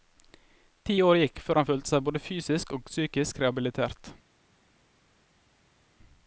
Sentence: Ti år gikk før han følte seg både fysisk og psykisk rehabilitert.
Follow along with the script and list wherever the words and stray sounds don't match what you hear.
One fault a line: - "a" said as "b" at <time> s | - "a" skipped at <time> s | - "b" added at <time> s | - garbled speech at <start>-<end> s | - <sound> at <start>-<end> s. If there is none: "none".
none